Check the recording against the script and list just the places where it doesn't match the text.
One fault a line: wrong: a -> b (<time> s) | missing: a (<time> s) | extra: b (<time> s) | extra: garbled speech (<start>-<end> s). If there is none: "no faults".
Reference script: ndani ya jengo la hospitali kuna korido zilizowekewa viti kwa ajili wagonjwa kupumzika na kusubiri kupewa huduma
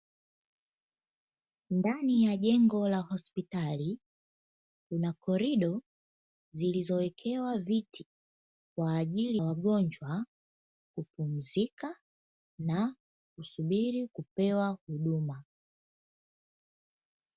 no faults